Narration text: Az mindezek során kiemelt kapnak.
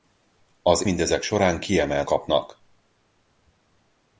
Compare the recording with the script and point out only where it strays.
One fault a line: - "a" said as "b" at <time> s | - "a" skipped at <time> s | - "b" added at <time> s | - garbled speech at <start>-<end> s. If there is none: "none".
none